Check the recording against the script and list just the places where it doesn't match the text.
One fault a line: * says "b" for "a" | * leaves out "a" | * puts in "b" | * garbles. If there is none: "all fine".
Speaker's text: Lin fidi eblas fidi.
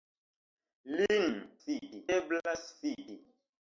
all fine